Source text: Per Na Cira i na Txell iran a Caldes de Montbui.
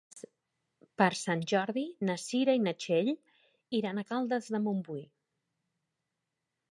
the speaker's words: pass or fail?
fail